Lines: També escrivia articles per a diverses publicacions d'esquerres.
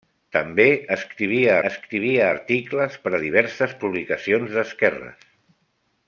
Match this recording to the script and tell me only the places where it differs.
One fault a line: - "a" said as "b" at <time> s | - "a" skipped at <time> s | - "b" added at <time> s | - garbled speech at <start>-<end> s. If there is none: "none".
- "escrivia" added at 1.7 s